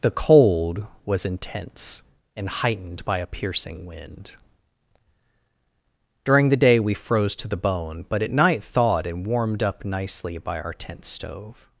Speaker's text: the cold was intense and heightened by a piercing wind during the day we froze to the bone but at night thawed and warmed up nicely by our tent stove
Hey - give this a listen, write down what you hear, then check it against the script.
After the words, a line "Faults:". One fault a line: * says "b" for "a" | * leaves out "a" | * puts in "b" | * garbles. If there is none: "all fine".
the cold was intense and heightened by a piercing wind during the day we froze to the bone but at night thawed and warmed up nicely by our tent stove
Faults:
all fine